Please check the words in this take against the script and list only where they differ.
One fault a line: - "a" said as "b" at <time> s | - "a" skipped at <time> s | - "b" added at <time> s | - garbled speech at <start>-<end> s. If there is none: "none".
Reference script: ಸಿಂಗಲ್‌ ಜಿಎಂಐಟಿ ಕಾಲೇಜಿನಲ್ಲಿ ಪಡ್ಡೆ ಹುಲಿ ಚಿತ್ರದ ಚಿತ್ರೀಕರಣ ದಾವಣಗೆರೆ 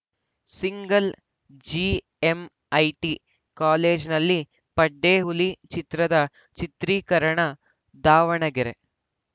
none